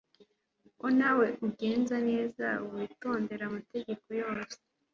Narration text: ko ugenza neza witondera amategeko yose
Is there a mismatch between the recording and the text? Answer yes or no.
yes